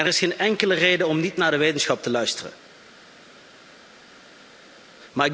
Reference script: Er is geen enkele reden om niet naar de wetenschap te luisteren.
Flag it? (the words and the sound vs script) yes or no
no